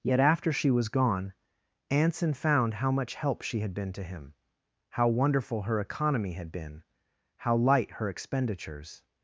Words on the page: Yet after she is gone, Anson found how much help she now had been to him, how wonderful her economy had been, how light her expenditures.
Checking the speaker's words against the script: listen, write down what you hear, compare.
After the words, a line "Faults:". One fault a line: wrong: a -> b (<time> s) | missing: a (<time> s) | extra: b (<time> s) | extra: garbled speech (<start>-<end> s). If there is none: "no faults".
Yet after she was gone, Anson found how much help she had been to him, how wonderful her economy had been, how light her expenditures.
Faults:
wrong: is -> was (0.7 s)
missing: now (3.6 s)